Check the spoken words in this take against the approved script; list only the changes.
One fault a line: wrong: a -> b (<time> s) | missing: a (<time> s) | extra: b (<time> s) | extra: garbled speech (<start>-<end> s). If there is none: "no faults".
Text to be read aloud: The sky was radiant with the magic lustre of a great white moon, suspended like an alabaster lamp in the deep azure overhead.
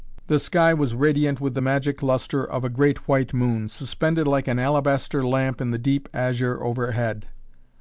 no faults